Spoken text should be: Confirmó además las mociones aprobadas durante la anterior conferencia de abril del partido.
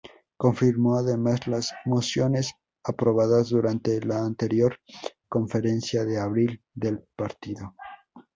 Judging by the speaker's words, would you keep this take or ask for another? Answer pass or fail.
pass